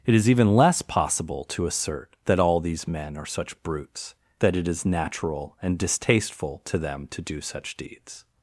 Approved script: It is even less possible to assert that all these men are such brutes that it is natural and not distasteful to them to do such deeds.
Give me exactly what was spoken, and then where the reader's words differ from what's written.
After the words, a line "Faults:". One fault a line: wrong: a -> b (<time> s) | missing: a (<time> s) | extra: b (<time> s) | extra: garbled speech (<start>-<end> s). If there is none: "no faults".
It is even less possible to assert that all these men are such brutes that it is natural and distasteful to them to do such deeds.
Faults:
missing: not (5.8 s)